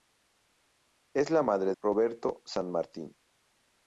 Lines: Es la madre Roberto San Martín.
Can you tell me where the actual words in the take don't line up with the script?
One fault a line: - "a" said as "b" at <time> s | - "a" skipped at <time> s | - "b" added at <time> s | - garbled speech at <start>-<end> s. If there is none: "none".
none